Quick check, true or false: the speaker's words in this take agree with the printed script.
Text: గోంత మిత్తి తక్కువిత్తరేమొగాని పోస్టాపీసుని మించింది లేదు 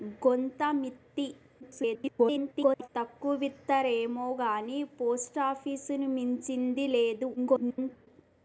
false